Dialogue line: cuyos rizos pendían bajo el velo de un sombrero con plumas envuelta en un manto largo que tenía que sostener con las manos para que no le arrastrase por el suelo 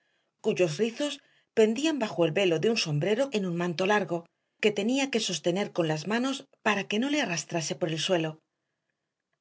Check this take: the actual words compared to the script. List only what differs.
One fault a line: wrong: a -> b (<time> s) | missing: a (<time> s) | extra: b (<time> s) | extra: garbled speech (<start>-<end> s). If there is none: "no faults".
missing: con plumas envuelta (3.3 s)